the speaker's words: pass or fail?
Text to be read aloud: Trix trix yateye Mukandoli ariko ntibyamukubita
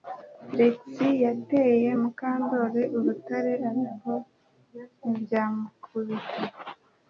fail